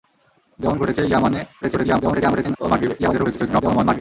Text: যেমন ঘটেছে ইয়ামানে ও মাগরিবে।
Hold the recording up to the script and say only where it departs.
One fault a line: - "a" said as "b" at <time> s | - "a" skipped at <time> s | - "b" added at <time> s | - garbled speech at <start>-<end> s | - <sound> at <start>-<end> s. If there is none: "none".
- garbled speech at 1.6-2.6 s
- garbled speech at 3.0-4.0 s